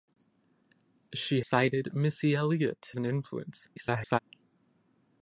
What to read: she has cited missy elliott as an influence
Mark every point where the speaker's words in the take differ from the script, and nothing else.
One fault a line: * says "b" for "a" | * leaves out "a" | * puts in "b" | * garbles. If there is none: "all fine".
* leaves out "has"
* leaves out "as"
* garbles